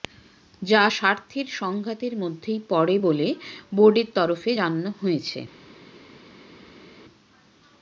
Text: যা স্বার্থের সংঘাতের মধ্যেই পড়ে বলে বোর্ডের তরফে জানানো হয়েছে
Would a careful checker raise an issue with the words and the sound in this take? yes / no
no